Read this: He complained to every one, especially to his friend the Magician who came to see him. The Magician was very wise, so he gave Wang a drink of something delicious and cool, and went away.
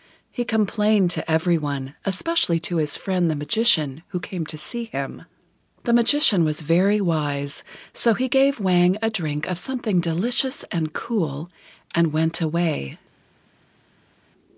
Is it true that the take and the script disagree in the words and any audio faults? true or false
false